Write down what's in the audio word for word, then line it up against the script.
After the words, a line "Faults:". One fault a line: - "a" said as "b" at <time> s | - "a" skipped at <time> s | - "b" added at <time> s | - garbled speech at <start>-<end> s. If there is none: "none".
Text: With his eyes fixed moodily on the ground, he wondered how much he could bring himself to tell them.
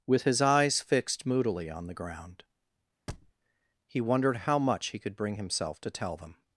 With his eyes fixed moodily on the ground, he wondered how much he could bring himself to tell them.
Faults:
none